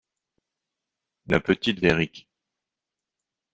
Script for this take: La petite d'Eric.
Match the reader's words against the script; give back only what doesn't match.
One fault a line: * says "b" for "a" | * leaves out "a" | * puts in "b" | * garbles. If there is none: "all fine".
all fine